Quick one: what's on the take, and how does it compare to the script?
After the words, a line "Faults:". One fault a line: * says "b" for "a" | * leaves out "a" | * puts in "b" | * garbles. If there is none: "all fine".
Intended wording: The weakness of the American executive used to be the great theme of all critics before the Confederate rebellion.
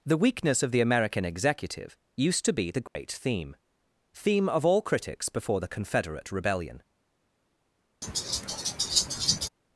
The weakness of the American executive used to be the great theme theme of all critics before the Confederate rebellion.
Faults:
* puts in "theme"